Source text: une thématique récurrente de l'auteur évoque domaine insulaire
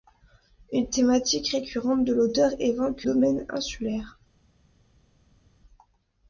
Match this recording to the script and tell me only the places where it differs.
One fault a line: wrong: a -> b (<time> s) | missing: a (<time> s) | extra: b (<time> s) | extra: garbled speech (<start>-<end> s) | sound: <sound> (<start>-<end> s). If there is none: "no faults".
no faults